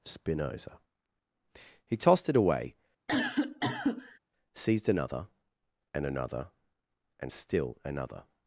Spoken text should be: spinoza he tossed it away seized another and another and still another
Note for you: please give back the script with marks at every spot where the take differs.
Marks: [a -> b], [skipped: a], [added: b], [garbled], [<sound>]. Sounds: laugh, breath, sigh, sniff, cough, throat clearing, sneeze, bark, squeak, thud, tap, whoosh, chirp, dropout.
spinoza he tossed it away [cough] seized another and another and still another